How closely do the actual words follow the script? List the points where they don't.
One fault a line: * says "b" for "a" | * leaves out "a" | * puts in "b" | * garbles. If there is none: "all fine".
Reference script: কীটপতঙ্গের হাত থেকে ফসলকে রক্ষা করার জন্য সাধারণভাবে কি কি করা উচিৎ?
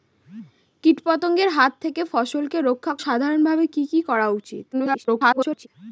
* leaves out "করার জন্য"
* garbles